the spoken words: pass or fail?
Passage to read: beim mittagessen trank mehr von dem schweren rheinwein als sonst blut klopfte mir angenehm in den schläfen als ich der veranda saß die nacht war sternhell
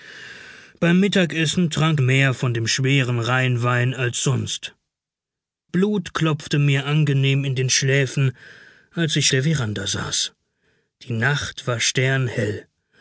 pass